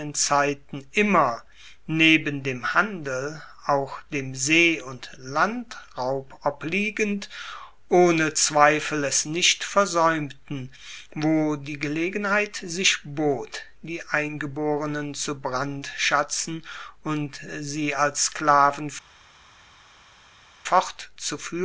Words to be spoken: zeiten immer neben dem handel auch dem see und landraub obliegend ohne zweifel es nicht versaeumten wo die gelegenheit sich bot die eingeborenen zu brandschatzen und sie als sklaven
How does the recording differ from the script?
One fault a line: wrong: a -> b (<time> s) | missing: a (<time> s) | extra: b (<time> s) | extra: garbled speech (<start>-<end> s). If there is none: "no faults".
no faults